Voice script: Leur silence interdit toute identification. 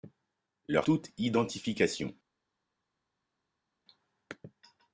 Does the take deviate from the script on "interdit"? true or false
true